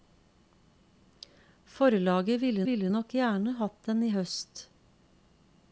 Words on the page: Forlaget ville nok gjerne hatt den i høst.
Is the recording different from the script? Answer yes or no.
yes